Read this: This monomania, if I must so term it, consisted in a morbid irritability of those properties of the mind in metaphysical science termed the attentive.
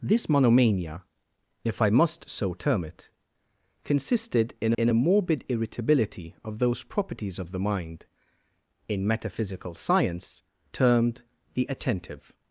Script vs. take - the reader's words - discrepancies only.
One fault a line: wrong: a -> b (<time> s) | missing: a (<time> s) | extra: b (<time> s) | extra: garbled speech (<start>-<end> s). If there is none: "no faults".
extra: in (4.8 s)